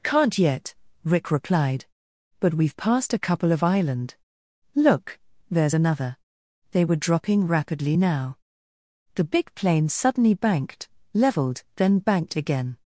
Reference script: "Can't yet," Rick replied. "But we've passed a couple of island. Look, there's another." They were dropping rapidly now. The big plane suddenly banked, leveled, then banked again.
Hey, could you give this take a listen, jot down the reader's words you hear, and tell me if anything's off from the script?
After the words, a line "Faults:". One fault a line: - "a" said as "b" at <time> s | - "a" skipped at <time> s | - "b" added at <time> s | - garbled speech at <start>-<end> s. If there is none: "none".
"Can't yet," Rick replied. "But we've passed a couple of island. Look, there's another." They were dropping rapidly now. The big plane suddenly banked, leveled, then banked again.
Faults:
none